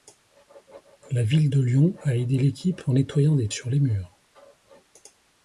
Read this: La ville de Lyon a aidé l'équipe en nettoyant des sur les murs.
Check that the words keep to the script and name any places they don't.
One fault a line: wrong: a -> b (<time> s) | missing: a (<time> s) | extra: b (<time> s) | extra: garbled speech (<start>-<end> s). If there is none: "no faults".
no faults